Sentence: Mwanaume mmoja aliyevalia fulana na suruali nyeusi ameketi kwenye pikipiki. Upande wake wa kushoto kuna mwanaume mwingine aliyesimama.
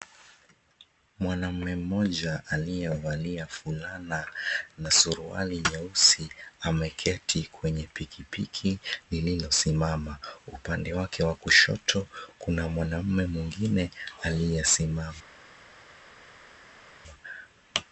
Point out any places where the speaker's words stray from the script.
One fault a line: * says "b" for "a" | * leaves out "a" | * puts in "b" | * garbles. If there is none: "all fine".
* puts in "lililosimama"